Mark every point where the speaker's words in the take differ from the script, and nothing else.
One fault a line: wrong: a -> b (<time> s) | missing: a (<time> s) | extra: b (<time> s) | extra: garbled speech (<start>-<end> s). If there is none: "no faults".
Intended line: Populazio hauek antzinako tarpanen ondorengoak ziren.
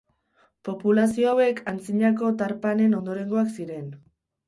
no faults